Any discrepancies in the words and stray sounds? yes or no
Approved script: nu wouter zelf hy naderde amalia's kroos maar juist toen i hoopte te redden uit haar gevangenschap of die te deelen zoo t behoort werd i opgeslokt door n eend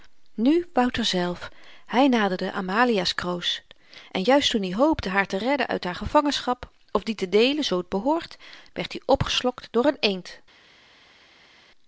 yes